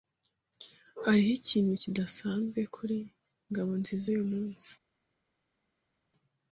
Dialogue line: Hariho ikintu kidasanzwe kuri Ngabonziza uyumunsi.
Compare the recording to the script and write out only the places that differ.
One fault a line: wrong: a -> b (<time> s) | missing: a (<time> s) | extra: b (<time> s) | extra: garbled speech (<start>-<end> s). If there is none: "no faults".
no faults